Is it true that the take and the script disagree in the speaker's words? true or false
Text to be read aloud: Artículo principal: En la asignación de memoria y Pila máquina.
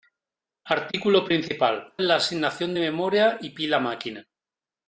false